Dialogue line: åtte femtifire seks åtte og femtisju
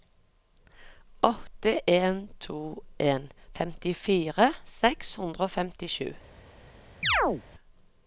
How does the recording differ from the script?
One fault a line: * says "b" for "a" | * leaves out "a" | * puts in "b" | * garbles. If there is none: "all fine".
* puts in "en to en"
* says "hundre" for "åtte"